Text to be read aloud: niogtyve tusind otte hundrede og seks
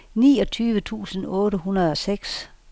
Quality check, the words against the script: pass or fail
pass